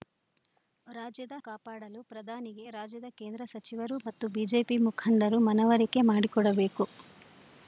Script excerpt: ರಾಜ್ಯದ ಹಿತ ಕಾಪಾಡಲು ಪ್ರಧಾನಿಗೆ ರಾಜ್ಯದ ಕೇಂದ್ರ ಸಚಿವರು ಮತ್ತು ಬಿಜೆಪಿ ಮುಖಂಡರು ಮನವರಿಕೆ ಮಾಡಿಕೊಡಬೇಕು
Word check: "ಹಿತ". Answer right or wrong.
wrong